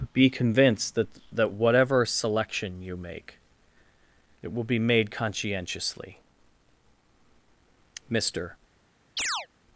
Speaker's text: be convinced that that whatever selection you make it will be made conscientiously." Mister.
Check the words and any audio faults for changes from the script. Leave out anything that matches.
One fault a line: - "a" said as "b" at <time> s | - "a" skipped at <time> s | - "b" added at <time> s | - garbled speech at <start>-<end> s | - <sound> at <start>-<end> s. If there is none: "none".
- chirp at 9.2-9.5 s